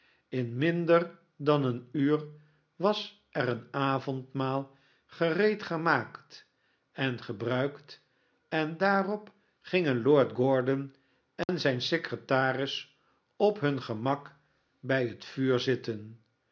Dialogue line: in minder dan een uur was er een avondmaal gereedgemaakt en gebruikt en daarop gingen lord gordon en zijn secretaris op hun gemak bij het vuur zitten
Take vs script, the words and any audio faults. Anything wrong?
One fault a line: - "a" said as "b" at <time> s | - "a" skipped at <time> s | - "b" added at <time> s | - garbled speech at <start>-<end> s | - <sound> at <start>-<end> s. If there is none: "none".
- dropout at 11.4-11.5 s